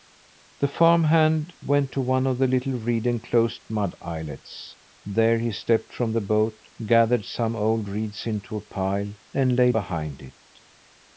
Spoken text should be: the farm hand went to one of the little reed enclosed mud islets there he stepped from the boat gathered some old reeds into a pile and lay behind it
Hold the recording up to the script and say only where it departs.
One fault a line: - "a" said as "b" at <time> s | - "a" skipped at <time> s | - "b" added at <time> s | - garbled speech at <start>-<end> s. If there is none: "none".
none